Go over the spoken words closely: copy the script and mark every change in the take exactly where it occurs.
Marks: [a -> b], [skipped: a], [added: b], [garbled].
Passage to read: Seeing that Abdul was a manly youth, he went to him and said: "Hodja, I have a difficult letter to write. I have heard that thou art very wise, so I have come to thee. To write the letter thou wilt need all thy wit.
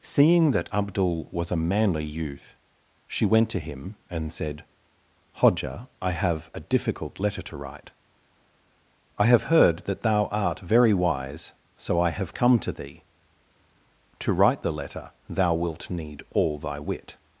Seeing that Abdul was a manly youth, [he -> she] went to him and said: "Hodja, I have a difficult letter to write. I have heard that thou art very wise, so I have come to thee. To write the letter thou wilt need all thy wit.